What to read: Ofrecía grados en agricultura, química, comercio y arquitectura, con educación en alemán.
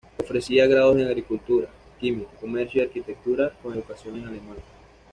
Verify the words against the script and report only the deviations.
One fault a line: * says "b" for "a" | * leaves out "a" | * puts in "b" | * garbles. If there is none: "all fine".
all fine